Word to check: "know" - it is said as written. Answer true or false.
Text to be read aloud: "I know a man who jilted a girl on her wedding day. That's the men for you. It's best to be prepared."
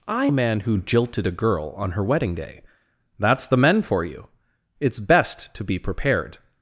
false